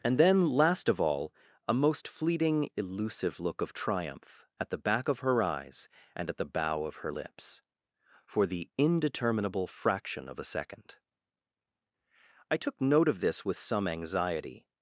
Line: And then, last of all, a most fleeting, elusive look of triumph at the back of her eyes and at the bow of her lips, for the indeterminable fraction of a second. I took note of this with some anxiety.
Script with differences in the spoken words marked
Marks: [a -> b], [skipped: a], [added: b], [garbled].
And then, last of all, a most fleeting, elusive look of triumph at the back of her eyes and at the bow of her lips, for the indeterminable fraction of a second. I took note of this with some anxiety.